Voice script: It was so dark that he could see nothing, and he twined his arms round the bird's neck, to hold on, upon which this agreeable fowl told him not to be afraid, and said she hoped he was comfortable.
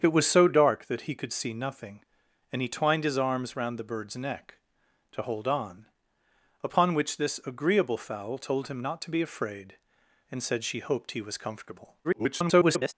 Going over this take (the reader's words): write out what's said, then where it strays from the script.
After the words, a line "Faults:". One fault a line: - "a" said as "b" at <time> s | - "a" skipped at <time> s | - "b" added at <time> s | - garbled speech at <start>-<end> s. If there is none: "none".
It was so dark that he could see nothing, and he twined his arms round the bird's neck, to hold on, upon which this agreeable fowl told him not to be afraid, and said she hoped he was comfortable. [garbled]
Faults:
- garbled speech at 12.0-12.9 s